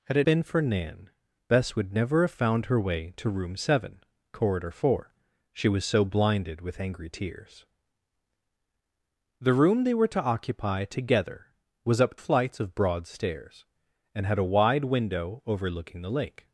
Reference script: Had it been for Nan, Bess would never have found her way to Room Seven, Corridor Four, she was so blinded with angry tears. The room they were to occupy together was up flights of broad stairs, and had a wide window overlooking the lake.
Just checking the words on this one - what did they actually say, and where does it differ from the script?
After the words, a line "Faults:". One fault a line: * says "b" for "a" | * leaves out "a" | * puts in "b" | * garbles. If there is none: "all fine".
Had it been for Nan, Bess would never have found her way to Room Seven, Corridor Four, she was so blinded with angry tears. The room they were to occupy together was up flights of broad stairs, and had a wide window overlooking the lake.
Faults:
all fine